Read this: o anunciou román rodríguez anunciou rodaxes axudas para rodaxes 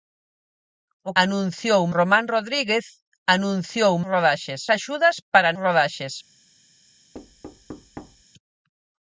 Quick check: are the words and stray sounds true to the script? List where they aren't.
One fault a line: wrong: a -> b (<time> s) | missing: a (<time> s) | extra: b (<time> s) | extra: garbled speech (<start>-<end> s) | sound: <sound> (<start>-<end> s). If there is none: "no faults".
sound: thud (7.1-8.2 s)